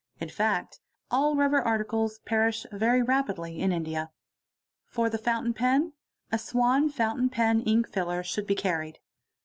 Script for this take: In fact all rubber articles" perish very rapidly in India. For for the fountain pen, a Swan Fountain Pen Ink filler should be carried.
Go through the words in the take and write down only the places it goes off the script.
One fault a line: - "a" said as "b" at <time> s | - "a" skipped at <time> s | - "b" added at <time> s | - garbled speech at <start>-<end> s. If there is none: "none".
- "for" skipped at 5.1 s